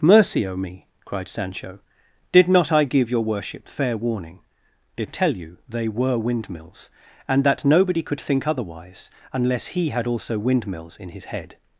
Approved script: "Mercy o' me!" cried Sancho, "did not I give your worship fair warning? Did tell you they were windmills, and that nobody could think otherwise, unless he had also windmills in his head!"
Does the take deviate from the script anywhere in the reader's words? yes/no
no